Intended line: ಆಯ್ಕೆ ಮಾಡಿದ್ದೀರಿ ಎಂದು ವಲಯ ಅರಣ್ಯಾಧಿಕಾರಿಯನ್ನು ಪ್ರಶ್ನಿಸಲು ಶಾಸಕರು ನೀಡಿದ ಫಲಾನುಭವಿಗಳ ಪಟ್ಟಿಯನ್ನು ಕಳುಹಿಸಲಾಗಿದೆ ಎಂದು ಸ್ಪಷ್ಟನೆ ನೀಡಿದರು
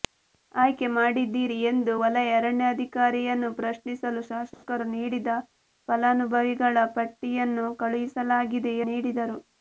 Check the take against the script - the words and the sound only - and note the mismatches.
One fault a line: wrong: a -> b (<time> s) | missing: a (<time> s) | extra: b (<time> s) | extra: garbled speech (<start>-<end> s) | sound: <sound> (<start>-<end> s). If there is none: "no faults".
sound: dropout (4.5-4.6 s)
missing: ಎಂದು ಸ್ಪಷ್ಟನೆ (8.7 s)